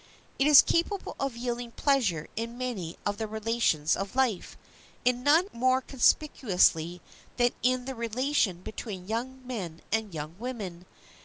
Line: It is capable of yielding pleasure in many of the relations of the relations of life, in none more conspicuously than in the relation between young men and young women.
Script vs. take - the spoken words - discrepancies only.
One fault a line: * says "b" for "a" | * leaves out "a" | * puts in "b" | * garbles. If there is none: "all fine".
* leaves out "the relations of"